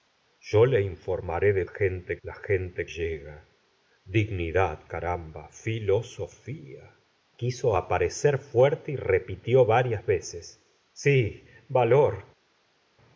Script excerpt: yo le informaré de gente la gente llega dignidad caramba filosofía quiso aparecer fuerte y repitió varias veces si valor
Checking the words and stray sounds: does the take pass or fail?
pass